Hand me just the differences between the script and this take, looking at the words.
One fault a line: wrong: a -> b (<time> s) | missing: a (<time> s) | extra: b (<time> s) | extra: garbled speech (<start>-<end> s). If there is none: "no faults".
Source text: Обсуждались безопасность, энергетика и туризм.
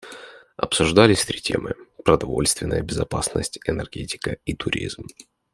extra: три темы продовольственная (1.2 s)